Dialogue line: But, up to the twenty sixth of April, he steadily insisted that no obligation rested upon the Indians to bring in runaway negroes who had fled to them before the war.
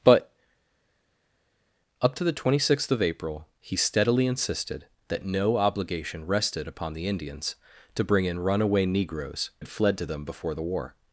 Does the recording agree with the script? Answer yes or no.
no